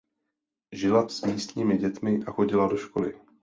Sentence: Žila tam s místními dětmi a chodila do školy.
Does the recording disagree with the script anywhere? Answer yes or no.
yes